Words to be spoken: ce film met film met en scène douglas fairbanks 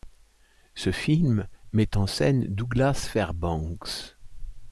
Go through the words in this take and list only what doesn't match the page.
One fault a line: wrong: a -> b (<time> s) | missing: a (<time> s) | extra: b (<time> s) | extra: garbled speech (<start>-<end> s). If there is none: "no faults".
missing: film met (1.9 s)